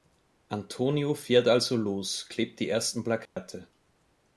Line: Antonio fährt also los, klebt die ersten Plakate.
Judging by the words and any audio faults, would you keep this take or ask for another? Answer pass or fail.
fail